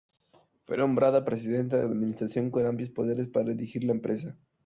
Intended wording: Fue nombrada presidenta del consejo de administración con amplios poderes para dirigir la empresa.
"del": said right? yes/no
no